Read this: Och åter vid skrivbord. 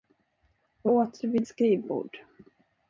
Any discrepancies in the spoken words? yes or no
no